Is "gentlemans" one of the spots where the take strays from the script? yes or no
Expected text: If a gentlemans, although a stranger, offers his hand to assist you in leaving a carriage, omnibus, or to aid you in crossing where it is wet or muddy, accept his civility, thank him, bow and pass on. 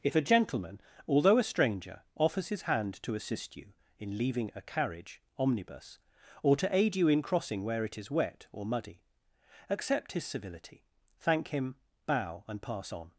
yes